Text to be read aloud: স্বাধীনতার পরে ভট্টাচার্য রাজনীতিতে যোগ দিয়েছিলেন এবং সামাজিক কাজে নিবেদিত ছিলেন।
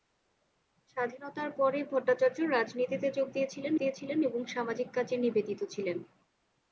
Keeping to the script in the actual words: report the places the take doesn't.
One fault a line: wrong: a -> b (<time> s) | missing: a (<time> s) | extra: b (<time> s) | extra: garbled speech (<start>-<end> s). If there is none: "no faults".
extra: দিয়েছিলেন (3.8 s)